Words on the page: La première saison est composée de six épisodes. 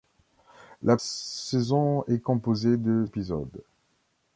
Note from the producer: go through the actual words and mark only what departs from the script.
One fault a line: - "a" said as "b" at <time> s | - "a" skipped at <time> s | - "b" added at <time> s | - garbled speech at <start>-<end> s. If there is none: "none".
- "première" skipped at 1.0 s
- "six" skipped at 3.0 s